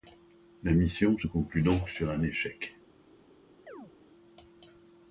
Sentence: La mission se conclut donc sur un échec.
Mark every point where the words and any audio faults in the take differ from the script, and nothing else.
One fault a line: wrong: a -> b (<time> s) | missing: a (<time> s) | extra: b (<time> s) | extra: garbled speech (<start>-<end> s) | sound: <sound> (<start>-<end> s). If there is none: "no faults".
sound: chirp (3.7-3.9 s)